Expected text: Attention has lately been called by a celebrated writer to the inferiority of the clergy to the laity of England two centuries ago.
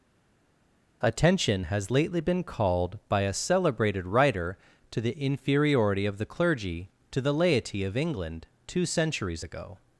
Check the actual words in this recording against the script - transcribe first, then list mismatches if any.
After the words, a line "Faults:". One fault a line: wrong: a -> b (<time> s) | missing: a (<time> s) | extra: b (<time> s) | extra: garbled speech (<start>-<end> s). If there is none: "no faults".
Attention has lately been called by a celebrated writer to the inferiority of the clergy to the laity of England two centuries ago.
Faults:
no faults